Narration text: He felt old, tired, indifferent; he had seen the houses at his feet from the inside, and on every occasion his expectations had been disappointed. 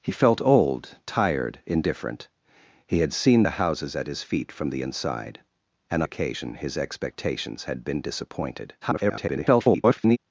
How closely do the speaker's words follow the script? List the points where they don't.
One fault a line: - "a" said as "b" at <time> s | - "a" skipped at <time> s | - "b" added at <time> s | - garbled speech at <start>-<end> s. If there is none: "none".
- "on every" skipped at 6.0 s
- garbled speech at 8.8-10.2 s